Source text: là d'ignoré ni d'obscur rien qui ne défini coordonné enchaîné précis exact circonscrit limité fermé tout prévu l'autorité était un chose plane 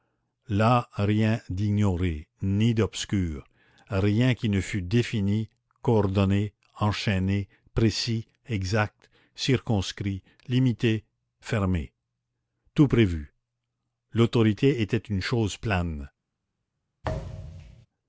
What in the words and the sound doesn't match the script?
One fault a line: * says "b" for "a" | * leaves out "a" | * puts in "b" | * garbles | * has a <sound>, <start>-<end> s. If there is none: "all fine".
* puts in "rien"
* puts in "fût"
* says "une" for "un"
* has a thud, 17.0-17.9 s